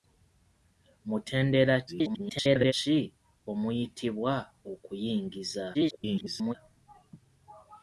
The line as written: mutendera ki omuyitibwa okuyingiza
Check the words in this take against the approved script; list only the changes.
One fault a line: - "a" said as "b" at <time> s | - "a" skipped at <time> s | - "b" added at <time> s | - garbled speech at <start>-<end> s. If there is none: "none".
- garbled speech at 1.9-2.7 s
- garbled speech at 5.7-6.5 s